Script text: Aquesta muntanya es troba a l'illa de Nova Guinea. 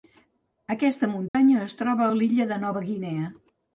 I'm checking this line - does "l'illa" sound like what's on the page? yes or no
yes